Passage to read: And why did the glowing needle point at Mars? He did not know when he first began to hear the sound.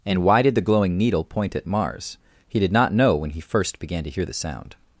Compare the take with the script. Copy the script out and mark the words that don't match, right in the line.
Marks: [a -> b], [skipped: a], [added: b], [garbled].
And why did the glowing needle point at Mars? He did not know when he first began to hear the sound.